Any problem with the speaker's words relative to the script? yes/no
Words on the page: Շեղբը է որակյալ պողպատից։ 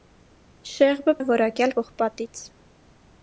no